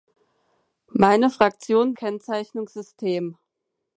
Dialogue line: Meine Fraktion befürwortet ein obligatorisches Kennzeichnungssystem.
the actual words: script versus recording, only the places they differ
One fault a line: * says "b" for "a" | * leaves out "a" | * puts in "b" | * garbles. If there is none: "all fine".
* leaves out "befürwortet ein obligatorisches"